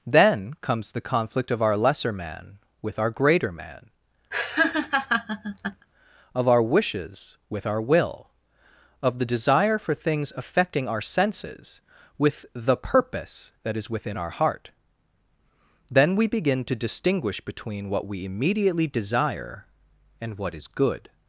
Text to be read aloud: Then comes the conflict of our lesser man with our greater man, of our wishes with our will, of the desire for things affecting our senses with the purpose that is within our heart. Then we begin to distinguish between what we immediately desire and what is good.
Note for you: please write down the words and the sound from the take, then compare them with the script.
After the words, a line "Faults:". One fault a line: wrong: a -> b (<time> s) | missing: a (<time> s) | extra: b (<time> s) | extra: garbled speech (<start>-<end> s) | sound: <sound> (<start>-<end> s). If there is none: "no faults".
Then comes the conflict of our lesser man with our greater man, of our wishes with our will, of the desire for things affecting our senses with the purpose that is within our heart. Then we begin to distinguish between what we immediately desire and what is good.
Faults:
sound: laugh (4.3-5.9 s)